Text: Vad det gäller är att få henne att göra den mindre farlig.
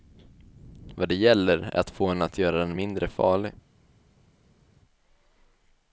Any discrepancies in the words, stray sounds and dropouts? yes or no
no